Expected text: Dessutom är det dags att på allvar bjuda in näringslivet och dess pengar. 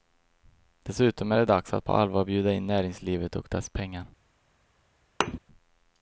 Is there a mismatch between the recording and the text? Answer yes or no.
no